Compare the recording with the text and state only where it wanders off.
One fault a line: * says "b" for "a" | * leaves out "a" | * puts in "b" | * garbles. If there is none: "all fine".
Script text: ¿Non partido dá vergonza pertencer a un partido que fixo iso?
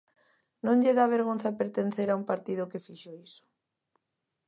* says "lle" for "partido"